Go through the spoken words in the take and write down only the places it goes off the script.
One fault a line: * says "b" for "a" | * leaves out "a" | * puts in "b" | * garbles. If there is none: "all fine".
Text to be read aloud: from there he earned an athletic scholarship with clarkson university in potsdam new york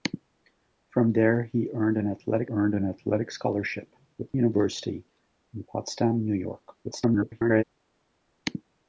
* puts in "earned an athletic"
* leaves out "clarkson"
* garbles